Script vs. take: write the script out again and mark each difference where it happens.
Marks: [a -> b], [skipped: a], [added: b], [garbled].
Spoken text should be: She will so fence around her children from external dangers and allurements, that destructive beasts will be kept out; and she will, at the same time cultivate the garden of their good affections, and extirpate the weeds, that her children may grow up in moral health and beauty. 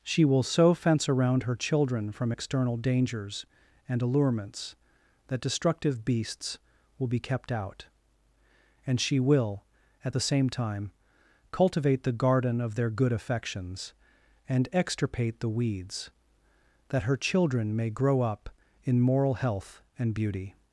She will so fence around her children from external dangers and allurements, that destructive beasts will be kept out; and she will, at the same time cultivate the garden of their good affections, and extirpate the weeds, that her children may grow up in moral health and beauty.